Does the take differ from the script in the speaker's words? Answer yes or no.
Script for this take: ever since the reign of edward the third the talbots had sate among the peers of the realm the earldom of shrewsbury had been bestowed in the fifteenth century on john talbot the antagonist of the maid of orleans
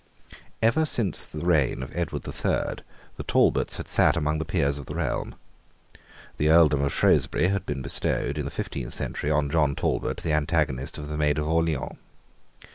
no